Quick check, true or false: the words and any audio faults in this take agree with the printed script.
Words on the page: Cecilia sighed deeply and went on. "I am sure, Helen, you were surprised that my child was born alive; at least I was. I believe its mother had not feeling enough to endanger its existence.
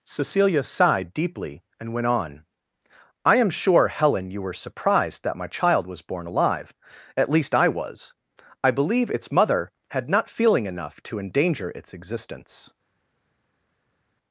true